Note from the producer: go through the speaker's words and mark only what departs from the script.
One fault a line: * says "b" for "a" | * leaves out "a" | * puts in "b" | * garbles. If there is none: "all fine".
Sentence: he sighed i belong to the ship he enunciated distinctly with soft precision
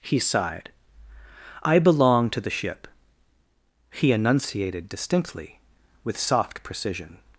all fine